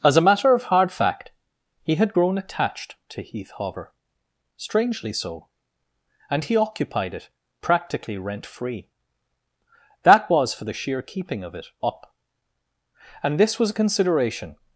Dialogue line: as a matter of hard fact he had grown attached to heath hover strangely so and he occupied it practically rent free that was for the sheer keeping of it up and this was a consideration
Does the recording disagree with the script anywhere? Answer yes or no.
no